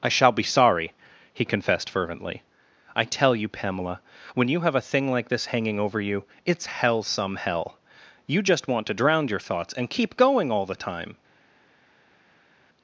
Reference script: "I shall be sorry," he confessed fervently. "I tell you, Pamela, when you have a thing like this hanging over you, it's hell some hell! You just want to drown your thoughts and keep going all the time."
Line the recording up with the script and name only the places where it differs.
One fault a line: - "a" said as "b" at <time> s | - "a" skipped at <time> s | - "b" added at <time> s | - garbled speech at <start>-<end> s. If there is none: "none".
none